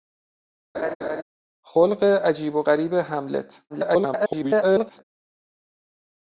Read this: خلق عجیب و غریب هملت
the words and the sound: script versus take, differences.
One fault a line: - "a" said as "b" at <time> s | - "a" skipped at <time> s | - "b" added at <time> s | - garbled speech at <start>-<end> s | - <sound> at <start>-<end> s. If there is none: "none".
- laugh at 0.7-1.2 s
- garbled speech at 3.7-5.0 s